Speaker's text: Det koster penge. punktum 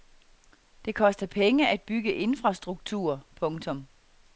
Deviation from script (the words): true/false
true